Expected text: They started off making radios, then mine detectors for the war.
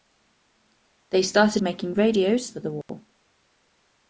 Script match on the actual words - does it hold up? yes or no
no